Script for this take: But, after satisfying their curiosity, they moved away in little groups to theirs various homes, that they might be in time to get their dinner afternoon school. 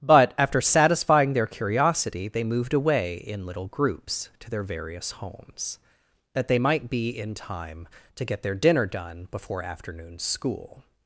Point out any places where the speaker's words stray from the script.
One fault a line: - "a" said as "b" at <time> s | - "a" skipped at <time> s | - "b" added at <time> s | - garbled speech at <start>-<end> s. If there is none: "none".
- "theirs" said as "their" at 4.5 s
- "done before" added at 8.8 s